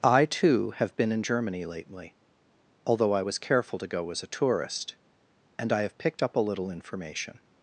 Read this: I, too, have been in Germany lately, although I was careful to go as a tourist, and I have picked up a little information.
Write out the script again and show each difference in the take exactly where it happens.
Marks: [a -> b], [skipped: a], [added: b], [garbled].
I, too, have been in Germany lately, although I was careful to go as a tourist, and I have picked up a little information.